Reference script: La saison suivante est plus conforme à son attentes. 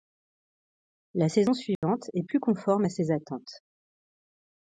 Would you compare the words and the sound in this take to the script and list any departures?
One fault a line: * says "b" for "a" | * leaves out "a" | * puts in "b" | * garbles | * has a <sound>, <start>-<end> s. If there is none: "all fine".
* has a dropout, 1.8-1.8 s
* says "ses" for "son"